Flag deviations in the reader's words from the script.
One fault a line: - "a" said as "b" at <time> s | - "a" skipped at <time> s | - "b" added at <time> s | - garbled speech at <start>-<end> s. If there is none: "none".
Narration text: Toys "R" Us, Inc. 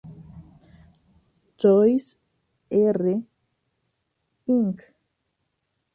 - "Us" skipped at 3.2 s